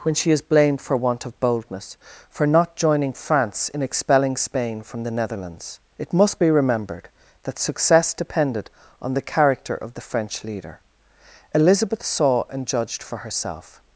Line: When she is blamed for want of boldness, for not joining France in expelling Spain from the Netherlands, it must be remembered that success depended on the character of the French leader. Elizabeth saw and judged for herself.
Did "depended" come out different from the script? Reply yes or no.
no